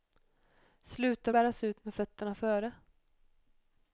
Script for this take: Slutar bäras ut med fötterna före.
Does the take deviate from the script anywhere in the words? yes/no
no